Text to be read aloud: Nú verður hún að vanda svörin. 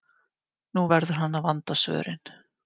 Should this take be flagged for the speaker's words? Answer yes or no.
yes